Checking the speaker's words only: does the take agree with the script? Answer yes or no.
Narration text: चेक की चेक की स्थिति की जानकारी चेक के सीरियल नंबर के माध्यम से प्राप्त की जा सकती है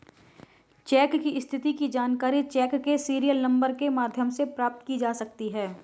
no